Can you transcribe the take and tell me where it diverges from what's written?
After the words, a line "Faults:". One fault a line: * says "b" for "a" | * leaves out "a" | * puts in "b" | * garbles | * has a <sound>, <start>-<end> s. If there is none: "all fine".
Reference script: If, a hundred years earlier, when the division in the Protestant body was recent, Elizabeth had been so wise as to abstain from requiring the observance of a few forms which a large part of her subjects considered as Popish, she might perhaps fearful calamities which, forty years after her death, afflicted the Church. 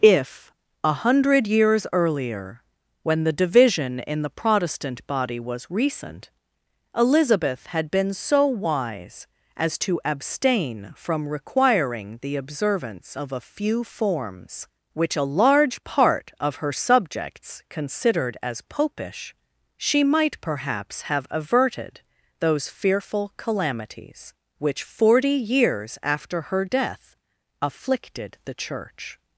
If, a hundred years earlier, when the division in the Protestant body was recent, Elizabeth had been so wise as to abstain from requiring the observance of a few forms which a large part of her subjects considered as Popish, she might perhaps have averted those fearful calamities which, forty years after her death, afflicted the Church.
Faults:
* puts in "have averted those"